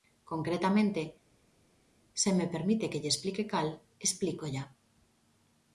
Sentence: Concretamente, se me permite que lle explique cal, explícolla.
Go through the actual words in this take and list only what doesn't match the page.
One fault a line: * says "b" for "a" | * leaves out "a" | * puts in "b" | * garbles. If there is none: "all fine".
all fine